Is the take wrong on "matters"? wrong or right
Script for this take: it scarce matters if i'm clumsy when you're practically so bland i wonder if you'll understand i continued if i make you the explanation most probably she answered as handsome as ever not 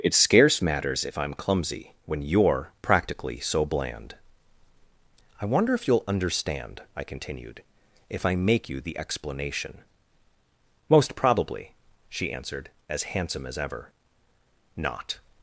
right